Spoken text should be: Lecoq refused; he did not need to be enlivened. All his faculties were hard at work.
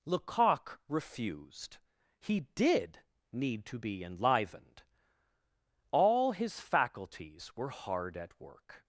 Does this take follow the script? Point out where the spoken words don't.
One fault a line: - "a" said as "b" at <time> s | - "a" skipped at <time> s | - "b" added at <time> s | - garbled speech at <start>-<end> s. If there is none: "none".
- "not" skipped at 3.0 s